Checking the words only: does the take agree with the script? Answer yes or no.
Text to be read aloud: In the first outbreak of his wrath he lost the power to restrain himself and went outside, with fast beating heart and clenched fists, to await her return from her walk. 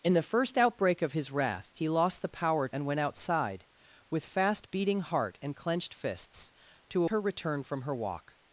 no